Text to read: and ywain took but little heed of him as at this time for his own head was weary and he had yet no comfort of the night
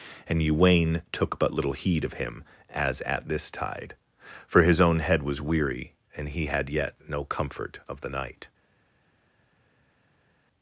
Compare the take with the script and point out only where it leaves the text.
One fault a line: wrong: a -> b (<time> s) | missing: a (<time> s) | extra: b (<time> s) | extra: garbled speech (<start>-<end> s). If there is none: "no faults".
wrong: time -> tide (3.5 s)